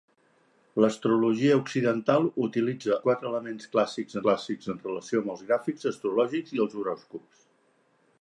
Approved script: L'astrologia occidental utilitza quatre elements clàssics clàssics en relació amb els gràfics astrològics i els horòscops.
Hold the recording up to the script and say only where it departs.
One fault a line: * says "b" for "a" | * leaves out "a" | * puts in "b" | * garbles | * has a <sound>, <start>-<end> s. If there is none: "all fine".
all fine